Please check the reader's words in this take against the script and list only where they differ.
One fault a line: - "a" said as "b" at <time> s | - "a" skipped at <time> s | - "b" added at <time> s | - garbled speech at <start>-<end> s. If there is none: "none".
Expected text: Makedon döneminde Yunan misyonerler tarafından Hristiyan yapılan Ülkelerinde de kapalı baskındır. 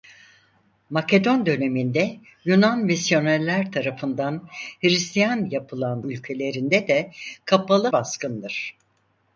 none